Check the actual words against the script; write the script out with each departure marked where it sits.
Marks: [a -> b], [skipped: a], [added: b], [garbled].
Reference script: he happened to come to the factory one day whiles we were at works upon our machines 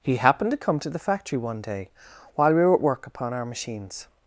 he happened to come to the factory one day [whiles -> while] we were at [works -> work] upon our machines